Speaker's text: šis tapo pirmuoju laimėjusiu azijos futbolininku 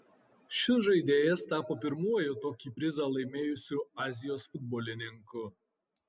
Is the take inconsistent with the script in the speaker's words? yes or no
yes